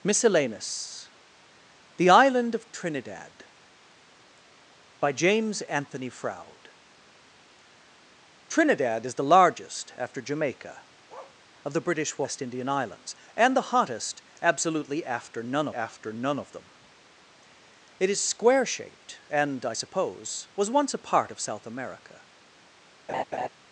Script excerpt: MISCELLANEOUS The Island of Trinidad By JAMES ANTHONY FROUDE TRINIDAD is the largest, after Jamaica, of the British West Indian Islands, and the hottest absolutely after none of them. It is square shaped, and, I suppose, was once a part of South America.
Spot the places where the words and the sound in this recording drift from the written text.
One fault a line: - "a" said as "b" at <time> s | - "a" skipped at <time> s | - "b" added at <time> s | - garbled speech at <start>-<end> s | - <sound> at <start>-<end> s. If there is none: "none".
- bark at 11.1-11.4 s
- "after none" added at 15.7 s
- laugh at 23.1-23.5 s